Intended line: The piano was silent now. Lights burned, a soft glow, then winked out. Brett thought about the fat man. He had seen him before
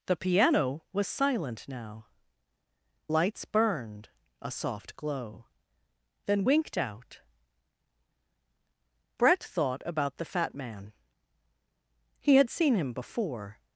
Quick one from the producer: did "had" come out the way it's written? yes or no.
yes